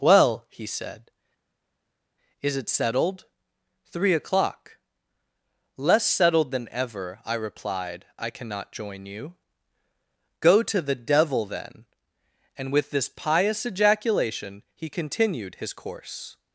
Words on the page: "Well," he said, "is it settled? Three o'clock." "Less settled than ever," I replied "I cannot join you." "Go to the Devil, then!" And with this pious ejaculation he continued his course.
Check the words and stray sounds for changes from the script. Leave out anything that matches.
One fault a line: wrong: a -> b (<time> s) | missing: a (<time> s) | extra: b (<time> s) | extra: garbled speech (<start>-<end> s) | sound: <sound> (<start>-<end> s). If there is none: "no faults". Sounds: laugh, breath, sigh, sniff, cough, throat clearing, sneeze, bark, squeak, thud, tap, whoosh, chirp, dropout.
no faults